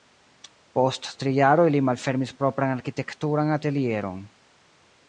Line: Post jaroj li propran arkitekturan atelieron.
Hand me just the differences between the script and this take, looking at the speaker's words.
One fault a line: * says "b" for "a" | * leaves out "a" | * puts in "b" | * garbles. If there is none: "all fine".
* puts in "tri"
* puts in "malfermis"